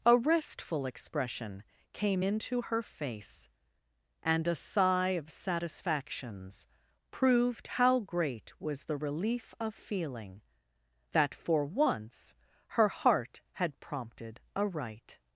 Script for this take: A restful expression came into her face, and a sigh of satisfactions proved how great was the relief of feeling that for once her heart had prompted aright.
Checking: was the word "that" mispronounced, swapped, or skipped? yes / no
no